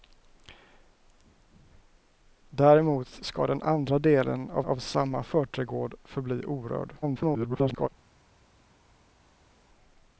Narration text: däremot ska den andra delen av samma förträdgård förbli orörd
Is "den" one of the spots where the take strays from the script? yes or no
no